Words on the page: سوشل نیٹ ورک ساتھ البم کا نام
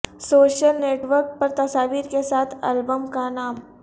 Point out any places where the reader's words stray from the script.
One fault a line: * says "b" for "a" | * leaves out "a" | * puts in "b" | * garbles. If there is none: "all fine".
* puts in "پر تصاویر کے"